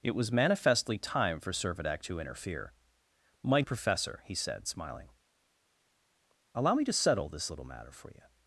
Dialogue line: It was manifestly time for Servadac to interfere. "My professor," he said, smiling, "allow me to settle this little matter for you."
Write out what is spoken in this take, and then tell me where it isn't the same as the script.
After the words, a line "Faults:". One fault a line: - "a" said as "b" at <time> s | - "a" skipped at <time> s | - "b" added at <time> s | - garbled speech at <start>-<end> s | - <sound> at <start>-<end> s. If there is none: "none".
It was manifestly time for Servadac to interfere. "My professor," he said, smiling, "allow me to settle this little matter for you."
Faults:
none